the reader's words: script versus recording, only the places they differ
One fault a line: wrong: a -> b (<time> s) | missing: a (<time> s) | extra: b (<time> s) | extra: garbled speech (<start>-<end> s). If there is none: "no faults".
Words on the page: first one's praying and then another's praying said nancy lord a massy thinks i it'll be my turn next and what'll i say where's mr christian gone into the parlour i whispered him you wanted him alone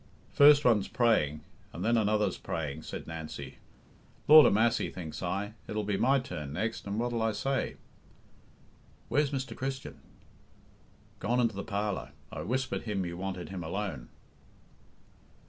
no faults